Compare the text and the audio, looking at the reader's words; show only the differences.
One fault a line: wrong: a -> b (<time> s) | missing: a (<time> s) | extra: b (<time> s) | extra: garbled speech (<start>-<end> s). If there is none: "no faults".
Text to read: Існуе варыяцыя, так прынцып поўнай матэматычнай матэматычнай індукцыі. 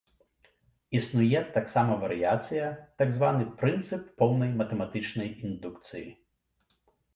extra: таксама (1.6 s)
extra: званы (3.2 s)
missing: матэматычнай (5.3 s)